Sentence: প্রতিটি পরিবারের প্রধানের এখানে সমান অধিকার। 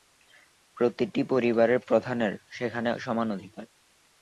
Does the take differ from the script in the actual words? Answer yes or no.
yes